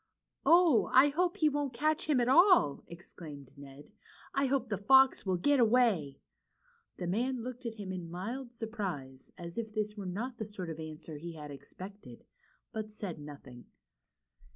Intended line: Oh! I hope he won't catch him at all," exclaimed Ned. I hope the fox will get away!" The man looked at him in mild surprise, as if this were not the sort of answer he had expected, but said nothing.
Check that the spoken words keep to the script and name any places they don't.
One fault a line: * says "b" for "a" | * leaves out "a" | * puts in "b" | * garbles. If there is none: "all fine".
all fine